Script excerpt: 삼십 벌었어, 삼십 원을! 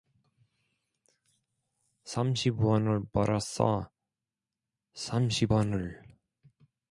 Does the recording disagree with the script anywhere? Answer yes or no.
yes